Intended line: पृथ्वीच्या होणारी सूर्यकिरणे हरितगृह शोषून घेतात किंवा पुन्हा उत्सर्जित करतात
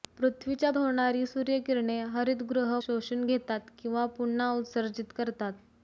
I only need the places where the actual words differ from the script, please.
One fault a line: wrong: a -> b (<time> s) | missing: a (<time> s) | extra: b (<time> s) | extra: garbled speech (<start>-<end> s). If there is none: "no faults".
no faults